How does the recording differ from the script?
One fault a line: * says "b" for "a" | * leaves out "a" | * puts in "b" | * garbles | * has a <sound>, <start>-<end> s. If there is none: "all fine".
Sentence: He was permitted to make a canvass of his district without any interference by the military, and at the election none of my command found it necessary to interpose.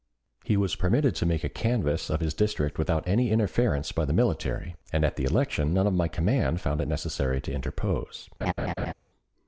* has a laugh, 8.4-8.9 s